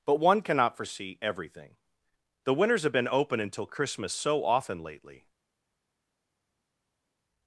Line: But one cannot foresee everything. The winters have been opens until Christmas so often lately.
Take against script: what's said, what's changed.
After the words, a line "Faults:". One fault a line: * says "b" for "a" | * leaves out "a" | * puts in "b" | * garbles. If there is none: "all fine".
But one cannot foresee everything. The winters have been open until Christmas so often lately.
Faults:
* says "open" for "opens"